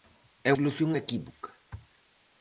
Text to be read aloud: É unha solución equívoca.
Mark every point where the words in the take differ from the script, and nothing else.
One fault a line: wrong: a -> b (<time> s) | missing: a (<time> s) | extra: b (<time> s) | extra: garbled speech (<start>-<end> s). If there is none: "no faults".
missing: unha (0.5 s)